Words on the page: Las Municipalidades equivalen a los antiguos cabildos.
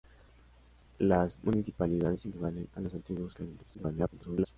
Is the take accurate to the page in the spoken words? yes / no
no